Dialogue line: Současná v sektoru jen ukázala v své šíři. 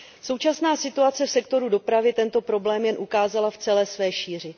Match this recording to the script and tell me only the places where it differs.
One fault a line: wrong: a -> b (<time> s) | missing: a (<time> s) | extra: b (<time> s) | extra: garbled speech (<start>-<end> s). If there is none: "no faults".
extra: situace (0.8 s)
extra: dopravy tento problém (1.7 s)
extra: celé (3.6 s)